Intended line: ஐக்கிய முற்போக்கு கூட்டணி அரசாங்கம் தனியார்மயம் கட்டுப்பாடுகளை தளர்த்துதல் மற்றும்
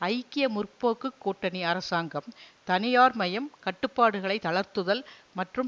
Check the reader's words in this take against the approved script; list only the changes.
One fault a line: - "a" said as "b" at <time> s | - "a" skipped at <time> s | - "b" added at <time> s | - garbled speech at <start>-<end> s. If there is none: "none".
none